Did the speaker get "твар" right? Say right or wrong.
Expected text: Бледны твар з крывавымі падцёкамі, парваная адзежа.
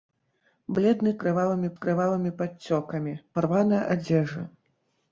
wrong